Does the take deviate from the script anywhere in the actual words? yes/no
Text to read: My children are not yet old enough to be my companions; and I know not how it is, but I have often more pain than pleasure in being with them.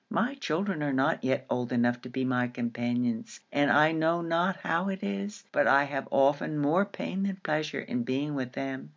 no